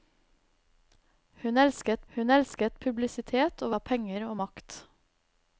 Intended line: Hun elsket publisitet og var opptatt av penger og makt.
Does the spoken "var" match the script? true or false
false